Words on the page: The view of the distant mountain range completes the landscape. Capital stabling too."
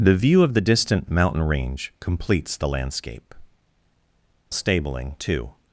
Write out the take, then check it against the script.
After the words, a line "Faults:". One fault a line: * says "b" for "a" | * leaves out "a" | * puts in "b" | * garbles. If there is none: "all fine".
The view of the distant mountain range completes the landscape. Stabling too."
Faults:
* leaves out "Capital"